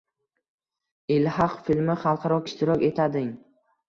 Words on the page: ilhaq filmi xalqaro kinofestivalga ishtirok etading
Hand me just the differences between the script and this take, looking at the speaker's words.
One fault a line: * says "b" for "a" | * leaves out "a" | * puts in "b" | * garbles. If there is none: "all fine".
* leaves out "kinofestivalga"